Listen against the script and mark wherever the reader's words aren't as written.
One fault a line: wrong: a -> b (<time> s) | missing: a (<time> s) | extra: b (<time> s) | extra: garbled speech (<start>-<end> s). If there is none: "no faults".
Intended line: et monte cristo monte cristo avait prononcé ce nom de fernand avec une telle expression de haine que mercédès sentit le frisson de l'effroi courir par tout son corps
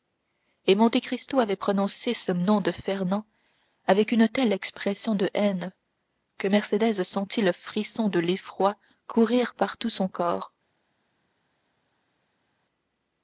missing: monte cristo (1.4 s)